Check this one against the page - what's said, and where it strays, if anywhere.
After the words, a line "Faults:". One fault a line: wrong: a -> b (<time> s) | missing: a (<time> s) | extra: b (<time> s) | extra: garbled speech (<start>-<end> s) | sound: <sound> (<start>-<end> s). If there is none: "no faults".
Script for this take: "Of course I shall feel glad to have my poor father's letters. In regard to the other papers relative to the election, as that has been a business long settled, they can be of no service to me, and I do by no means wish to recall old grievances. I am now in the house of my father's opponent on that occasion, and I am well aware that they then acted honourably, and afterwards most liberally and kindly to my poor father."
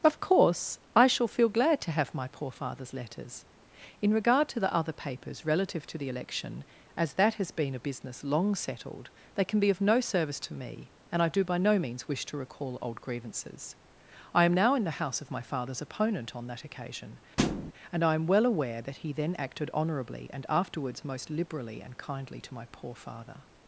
"Of course I shall feel glad to have my poor father's letters. In regard to the other papers relative to the election, as that has been a business long settled, they can be of no service to me, and I do by no means wish to recall old grievances. I am now in the house of my father's opponent on that occasion, and I am well aware that he then acted honourably, and afterwards most liberally and kindly to my poor father."
Faults:
sound: thud (17.4-17.7 s)
wrong: they -> he (19.0 s)